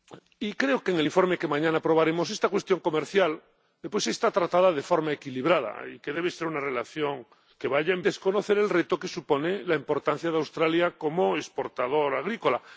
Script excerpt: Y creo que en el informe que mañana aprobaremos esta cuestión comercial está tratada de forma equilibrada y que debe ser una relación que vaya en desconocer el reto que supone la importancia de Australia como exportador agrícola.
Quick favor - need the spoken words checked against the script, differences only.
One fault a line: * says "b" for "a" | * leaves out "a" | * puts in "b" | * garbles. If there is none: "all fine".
all fine